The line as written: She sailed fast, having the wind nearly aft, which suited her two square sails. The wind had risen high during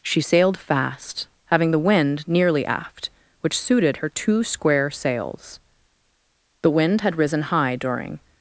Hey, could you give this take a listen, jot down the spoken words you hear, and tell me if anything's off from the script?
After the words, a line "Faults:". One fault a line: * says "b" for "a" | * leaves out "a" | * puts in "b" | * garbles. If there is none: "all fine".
She sailed fast, having the wind nearly aft, which suited her two square sails. The wind had risen high during
Faults:
all fine